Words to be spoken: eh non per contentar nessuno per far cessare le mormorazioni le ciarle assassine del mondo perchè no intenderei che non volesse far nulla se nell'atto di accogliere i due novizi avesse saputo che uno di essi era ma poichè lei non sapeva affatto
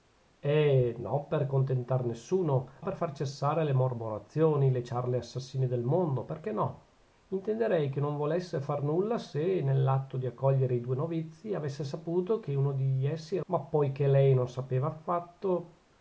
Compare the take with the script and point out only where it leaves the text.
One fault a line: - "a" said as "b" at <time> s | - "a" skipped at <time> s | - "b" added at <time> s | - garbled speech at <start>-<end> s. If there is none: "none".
none